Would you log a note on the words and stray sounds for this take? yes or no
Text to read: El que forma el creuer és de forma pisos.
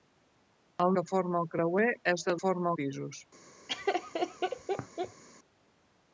yes